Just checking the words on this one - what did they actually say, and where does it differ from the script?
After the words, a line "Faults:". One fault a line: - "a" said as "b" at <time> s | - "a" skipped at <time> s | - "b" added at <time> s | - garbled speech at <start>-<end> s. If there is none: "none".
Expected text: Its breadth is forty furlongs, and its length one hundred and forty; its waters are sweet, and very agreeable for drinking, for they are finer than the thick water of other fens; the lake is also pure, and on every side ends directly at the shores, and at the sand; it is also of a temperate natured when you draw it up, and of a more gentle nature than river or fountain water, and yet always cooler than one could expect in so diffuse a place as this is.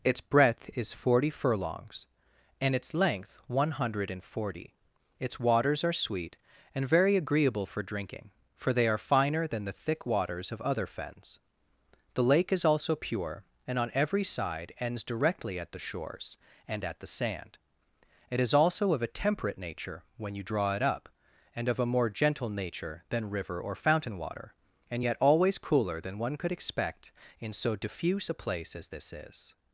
Its breadth is forty furlongs, and its length one hundred and forty; its waters are sweet, and very agreeable for drinking, for they are finer than the thick waters of other fens; the lake is also pure, and on every side ends directly at the shores, and at the sand; it is also of a temperate nature when you draw it up, and of a more gentle nature than river or fountain water, and yet always cooler than one could expect in so diffuse a place as this is.
Faults:
- "water" said as "waters" at 10.1 s
- "natured" said as "nature" at 19.6 s